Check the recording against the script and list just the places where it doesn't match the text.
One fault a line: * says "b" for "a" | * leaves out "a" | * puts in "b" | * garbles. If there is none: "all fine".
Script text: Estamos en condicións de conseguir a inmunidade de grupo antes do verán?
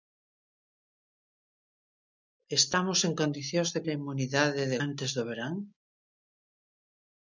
* leaves out "conseguir"
* leaves out "grupo"